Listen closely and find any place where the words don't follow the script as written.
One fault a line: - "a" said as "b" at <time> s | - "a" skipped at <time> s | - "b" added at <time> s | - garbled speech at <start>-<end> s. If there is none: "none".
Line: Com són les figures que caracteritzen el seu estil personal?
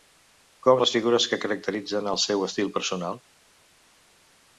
- "són" skipped at 0.8 s